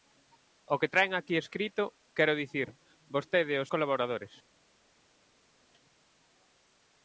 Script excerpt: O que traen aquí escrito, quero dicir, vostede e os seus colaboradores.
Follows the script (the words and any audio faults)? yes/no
no